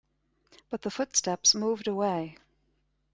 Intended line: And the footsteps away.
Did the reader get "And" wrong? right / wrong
wrong